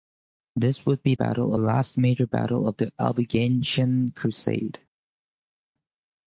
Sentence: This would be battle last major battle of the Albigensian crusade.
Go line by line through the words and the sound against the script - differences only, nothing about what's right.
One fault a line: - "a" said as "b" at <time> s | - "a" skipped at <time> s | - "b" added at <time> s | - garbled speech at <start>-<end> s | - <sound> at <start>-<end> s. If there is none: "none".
none